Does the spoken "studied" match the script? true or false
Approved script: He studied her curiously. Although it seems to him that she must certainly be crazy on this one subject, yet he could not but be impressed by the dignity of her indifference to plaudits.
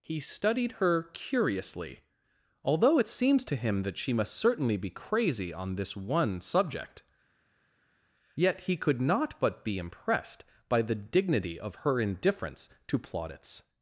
true